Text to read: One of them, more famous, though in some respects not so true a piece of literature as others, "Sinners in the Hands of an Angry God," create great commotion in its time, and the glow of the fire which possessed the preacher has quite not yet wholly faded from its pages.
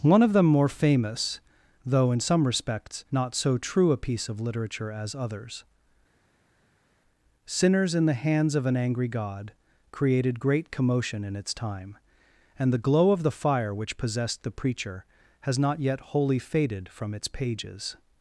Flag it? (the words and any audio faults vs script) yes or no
yes